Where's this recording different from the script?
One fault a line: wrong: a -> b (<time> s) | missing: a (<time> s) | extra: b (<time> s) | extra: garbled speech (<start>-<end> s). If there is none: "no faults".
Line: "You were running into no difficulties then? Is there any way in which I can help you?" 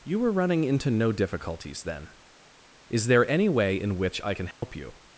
no faults